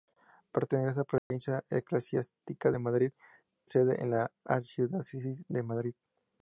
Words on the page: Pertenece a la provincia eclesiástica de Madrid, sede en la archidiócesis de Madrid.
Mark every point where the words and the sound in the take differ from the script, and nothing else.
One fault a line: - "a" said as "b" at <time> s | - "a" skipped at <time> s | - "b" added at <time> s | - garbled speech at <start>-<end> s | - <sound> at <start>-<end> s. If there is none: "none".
- dropout at 1.2-1.3 s